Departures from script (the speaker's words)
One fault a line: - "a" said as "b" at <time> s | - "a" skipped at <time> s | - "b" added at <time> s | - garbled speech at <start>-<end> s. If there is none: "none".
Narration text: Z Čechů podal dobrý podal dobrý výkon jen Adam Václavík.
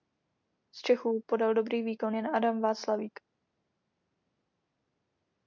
- "podal dobrý" skipped at 1.8 s